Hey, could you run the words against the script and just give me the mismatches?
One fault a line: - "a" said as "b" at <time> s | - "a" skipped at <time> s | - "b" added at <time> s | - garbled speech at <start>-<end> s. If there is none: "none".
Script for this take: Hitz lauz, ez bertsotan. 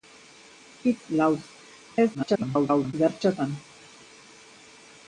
- garbled speech at 2.1-2.9 s